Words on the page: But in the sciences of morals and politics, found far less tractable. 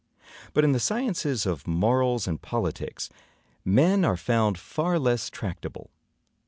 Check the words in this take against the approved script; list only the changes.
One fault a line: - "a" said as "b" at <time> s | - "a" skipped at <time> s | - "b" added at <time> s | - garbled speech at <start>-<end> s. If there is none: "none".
- "men are" added at 3.6 s